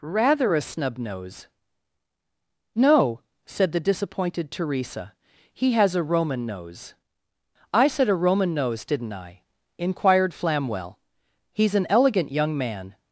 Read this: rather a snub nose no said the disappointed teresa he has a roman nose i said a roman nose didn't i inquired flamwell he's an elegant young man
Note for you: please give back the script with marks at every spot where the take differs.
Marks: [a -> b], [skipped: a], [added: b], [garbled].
rather a snub nose no said the disappointed teresa he has a roman nose i said a roman nose didn't i inquired flamwell he's an elegant young man